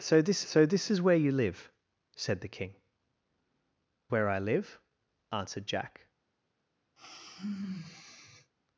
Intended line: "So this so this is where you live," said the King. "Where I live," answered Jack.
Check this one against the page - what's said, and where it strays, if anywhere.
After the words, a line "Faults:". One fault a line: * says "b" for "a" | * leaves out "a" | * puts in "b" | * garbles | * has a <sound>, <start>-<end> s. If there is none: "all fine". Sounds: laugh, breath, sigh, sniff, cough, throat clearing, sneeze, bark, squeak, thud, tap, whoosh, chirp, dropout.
"So this so this is where you live," said the King. "Where I live," answered Jack.
Faults:
* has a sigh, 7.0-8.5 s